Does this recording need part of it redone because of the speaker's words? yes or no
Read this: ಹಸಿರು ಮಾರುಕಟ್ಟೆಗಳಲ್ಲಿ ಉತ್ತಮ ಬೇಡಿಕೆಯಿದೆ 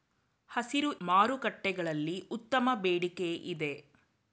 no